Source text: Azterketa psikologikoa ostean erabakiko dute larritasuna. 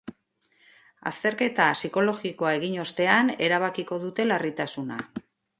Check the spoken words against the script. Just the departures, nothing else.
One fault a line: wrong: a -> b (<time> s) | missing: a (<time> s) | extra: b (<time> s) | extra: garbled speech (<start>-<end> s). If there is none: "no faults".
extra: egin (2.6 s)